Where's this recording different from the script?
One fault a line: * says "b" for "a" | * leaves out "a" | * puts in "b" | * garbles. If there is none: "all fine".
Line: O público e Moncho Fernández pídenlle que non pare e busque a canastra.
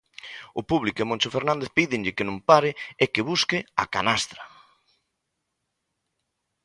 * puts in "que"